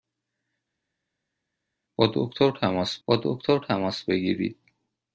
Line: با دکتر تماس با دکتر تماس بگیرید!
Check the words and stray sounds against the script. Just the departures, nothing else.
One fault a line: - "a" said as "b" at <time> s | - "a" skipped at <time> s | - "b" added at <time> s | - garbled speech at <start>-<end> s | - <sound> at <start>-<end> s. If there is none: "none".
none